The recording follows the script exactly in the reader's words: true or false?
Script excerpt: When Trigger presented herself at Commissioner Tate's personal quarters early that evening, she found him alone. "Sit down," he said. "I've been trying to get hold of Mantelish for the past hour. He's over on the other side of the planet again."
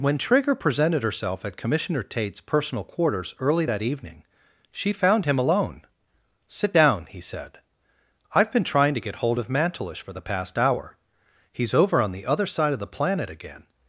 true